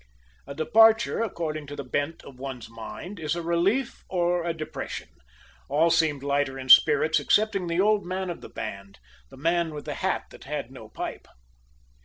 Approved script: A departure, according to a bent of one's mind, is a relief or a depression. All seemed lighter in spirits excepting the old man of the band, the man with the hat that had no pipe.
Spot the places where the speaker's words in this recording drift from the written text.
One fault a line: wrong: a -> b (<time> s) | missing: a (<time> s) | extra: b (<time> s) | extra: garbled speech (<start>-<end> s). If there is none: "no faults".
wrong: a -> the (1.7 s)